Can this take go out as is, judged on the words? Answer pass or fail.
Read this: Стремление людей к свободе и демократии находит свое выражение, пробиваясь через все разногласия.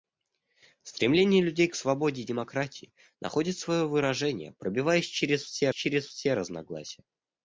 fail